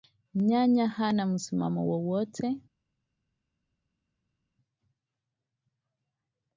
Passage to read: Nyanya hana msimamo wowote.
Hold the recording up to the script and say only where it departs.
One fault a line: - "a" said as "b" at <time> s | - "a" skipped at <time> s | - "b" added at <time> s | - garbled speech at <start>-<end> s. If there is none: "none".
none